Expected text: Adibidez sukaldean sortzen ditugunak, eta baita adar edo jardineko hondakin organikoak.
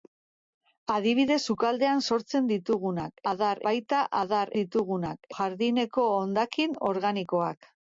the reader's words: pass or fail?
fail